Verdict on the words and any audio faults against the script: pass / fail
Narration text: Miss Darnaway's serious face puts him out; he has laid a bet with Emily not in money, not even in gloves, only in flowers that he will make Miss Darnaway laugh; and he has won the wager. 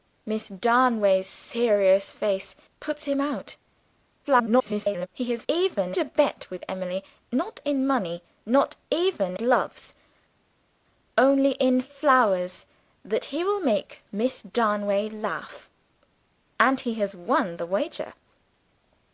fail